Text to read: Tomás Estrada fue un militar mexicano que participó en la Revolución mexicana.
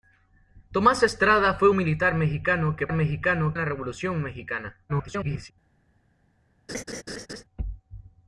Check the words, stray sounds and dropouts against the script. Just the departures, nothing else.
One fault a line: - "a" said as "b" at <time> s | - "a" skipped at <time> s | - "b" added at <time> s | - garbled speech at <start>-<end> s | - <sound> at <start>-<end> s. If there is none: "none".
- "un" skipped at 1.7 s
- "participó" said as "mexicano" at 2.9 s
- garbled speech at 4.9-5.5 s
- laugh at 6.7-7.4 s